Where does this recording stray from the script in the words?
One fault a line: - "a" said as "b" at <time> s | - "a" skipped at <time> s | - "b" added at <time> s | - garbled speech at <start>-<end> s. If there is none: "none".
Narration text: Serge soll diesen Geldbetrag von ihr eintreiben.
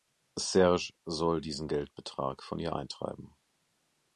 none